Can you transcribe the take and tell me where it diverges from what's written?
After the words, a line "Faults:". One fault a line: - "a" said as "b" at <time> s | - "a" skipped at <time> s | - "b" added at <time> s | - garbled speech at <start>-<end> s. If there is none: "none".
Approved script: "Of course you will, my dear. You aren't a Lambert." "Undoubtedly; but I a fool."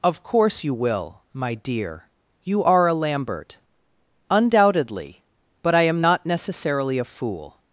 "Of course you will, my dear. You are a Lambert." "Undoubtedly; but I am not necessarily a fool."
Faults:
- "aren't" said as "are" at 2.6 s
- "am not necessarily" added at 5.8 s